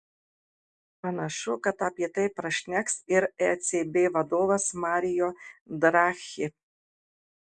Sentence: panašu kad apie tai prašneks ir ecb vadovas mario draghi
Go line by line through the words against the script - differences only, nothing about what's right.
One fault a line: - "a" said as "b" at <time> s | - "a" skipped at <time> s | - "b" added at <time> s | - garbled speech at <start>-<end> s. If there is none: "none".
none